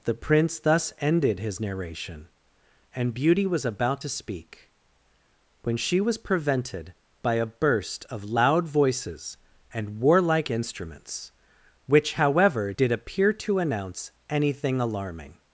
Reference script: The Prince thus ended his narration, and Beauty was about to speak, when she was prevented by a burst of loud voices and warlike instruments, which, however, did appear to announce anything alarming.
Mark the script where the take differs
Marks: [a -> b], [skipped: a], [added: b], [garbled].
The Prince thus ended his narration, and Beauty was about to speak, when she was prevented by a burst of loud voices and warlike instruments, which, however, did appear to announce anything alarming.